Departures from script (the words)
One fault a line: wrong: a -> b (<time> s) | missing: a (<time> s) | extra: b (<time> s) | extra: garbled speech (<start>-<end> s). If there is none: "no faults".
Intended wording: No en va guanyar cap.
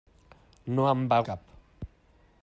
missing: guanyar (1.2 s)